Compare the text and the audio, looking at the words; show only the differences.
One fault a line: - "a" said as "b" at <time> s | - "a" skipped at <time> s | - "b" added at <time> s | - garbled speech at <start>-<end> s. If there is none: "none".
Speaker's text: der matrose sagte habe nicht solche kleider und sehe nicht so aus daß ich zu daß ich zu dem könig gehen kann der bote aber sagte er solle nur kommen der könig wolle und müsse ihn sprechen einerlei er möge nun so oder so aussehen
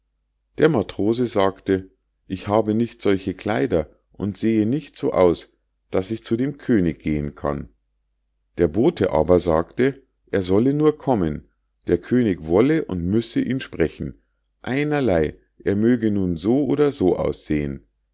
- "ich" added at 2.3 s
- "daß ich zu" skipped at 6.4 s